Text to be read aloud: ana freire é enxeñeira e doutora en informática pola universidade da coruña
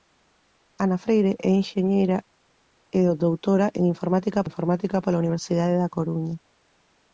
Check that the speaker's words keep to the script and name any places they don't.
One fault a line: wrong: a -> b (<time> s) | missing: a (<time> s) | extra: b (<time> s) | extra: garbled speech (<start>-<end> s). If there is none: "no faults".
extra: informática (4.5 s)